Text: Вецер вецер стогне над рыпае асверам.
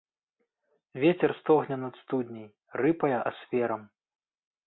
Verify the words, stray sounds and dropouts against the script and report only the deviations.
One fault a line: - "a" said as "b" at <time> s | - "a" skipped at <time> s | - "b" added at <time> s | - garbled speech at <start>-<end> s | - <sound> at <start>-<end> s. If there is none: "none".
- "вецер" skipped at 1.3 s
- "студняй" added at 2.0 s